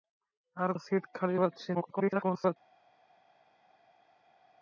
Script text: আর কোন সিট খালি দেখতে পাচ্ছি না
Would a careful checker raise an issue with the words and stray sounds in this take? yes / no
yes